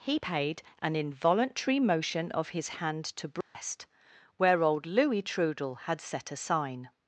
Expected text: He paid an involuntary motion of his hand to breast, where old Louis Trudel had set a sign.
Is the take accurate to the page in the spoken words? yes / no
yes